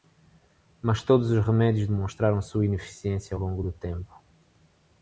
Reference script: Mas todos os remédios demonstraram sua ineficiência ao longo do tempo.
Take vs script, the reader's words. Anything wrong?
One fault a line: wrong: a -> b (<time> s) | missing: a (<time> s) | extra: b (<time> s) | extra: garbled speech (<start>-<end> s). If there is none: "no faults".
no faults